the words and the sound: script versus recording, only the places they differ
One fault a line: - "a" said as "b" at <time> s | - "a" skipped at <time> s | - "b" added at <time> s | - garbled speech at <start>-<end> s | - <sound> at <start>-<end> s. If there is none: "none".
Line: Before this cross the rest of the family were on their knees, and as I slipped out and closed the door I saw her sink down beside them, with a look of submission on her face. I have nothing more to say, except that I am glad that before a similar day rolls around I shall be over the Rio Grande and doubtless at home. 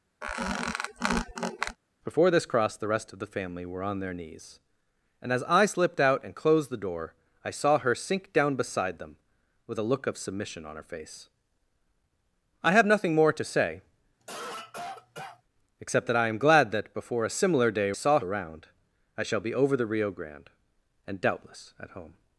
- squeak at 0.2-1.8 s
- cough at 14.2-15.4 s
- "rolls" said as "saw" at 17.9 s